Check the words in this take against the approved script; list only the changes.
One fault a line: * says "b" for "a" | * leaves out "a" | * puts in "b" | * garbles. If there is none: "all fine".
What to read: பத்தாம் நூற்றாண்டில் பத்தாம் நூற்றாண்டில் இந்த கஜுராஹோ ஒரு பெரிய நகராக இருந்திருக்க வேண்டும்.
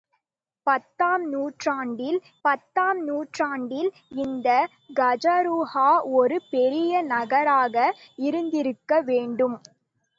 all fine